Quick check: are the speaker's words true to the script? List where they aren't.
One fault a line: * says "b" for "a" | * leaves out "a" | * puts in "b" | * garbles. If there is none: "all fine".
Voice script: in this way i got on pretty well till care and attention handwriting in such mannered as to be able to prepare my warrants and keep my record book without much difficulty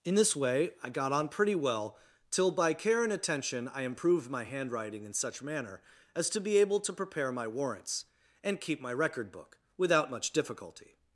* puts in "by"
* puts in "i improved my"
* says "manner" for "mannered"